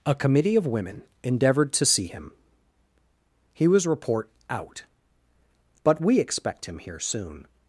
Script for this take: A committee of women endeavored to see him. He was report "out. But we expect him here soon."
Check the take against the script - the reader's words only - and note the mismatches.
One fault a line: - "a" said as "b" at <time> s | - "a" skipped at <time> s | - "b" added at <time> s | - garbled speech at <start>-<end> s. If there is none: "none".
none